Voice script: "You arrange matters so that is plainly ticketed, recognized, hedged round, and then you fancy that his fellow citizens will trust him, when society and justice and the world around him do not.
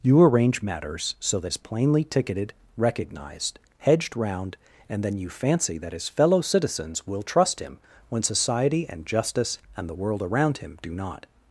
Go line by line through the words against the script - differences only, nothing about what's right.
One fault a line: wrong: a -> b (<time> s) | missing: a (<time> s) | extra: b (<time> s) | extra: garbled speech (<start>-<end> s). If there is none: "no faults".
no faults